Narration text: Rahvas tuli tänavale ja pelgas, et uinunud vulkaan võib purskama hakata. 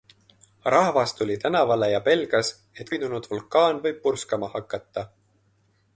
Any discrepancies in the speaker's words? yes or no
no